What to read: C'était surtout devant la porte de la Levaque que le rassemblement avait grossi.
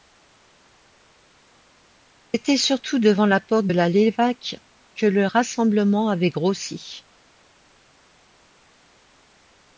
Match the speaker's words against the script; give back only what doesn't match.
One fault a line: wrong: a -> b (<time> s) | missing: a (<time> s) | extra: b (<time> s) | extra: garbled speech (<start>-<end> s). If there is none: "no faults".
missing: de (3.7 s)